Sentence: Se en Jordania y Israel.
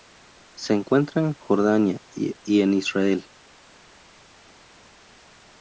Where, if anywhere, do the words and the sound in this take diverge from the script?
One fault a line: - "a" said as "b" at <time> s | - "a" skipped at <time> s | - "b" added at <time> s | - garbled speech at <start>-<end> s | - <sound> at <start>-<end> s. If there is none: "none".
- "encuentra" added at 0.7 s
- "en" added at 2.6 s